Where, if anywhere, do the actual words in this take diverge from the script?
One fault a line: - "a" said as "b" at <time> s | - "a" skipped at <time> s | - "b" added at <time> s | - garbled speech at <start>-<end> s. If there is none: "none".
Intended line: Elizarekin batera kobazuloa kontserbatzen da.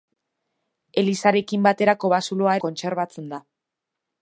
none